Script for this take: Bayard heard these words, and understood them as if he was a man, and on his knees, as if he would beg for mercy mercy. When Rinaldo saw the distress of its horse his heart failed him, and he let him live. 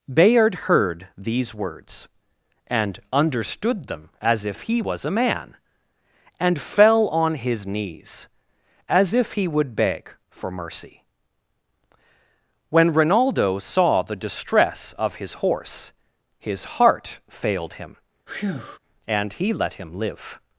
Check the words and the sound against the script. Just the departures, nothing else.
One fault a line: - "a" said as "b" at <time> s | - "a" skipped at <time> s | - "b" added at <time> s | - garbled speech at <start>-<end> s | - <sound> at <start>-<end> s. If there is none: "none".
- "fell" added at 6.6 s
- "mercy" skipped at 11.0 s
- "its" said as "his" at 15.1 s
- breath at 18.3-18.8 s